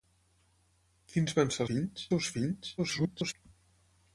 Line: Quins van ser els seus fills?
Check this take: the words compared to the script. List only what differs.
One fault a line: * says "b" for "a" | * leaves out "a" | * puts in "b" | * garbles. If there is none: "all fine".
* says "fills" for "els"
* garbles